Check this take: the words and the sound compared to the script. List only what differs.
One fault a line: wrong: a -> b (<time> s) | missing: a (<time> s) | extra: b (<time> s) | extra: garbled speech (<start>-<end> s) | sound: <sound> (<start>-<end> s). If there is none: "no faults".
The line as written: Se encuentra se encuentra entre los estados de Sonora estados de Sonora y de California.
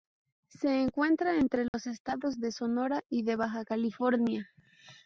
missing: se encuentra (1.4 s)
sound: dropout (1.7-1.7 s)
wrong: estados -> y (3.1 s)
wrong: Sonora y de -> Baja (3.4 s)